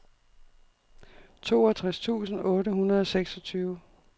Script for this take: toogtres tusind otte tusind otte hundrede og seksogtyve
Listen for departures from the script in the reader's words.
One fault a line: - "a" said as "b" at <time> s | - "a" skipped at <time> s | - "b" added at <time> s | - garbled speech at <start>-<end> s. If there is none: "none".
- "tusind otte" skipped at 2.7 s